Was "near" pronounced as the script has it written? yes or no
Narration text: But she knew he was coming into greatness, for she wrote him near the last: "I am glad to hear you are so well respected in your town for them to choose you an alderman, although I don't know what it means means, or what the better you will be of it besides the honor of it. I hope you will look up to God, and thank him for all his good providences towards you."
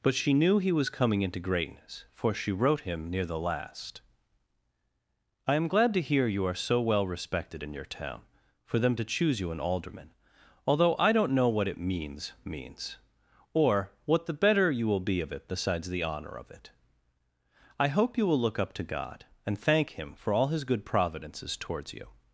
yes